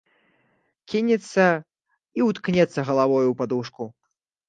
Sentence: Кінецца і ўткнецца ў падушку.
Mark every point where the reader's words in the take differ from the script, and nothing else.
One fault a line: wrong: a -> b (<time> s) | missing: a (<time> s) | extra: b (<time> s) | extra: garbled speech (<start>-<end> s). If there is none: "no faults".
extra: галавою (2.9 s)